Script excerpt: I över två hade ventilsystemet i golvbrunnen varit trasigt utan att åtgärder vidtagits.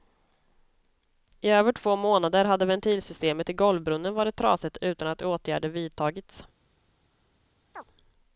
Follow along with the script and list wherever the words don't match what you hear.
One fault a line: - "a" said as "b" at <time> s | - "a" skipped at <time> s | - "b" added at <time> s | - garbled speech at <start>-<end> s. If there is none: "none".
- "månader" added at 1.9 s